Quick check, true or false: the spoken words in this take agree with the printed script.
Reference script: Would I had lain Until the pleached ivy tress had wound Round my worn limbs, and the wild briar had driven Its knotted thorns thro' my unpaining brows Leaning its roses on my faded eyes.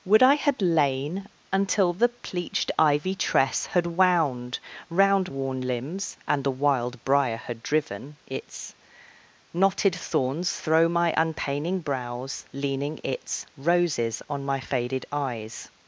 false